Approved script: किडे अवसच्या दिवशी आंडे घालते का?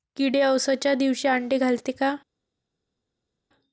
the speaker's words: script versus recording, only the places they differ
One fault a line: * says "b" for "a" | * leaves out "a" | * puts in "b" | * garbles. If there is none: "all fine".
all fine